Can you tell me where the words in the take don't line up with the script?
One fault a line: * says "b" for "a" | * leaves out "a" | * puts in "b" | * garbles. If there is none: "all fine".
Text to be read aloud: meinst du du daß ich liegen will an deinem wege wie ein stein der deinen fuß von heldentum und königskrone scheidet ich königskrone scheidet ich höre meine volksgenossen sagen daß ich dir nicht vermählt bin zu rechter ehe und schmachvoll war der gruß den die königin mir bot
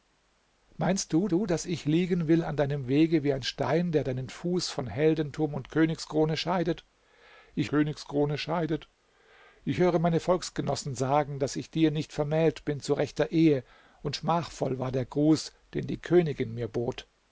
all fine